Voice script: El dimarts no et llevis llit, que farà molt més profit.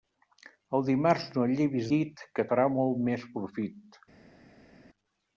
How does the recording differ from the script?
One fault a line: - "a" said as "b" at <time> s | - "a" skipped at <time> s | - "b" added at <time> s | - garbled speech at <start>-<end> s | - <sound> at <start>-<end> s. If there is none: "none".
none